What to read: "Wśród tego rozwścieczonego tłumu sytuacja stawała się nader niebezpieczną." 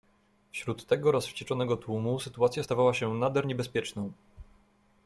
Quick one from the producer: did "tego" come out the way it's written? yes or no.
yes